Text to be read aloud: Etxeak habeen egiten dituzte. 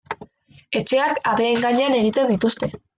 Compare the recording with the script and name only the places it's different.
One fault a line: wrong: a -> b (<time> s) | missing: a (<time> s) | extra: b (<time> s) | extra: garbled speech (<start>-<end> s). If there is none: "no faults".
extra: gainean (1.7 s)